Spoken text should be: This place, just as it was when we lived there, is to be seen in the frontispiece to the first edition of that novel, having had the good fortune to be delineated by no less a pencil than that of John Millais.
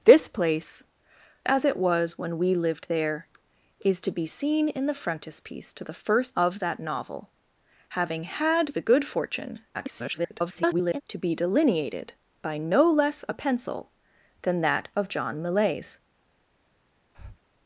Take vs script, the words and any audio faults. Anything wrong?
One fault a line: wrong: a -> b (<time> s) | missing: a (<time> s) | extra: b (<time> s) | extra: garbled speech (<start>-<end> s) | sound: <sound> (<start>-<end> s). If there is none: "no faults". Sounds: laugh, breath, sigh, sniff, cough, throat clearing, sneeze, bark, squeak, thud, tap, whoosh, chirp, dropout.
missing: just (0.8 s)
missing: edition (6.4 s)
extra: garbled speech (9.7-11.0 s)
sound: breath (17.1-17.4 s)